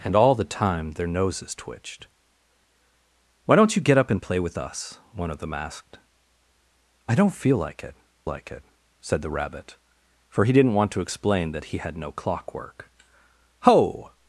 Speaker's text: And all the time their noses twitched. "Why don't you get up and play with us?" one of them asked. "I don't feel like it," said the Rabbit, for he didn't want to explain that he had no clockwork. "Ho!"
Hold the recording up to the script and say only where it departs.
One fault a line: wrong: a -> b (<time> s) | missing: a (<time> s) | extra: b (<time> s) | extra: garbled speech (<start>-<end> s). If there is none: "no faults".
extra: like it (8.2 s)